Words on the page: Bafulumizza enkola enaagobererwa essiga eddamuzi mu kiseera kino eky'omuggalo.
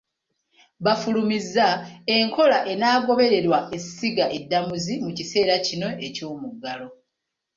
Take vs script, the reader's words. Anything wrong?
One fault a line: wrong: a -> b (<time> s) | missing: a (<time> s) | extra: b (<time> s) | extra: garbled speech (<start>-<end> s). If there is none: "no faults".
no faults